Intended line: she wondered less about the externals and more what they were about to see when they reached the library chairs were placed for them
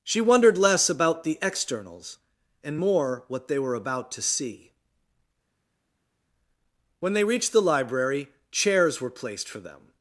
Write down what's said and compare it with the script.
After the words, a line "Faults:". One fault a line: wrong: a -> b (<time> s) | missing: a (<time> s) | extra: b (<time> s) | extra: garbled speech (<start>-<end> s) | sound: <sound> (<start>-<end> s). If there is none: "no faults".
she wondered less about the externals and more what they were about to see when they reached the library chairs were placed for them
Faults:
no faults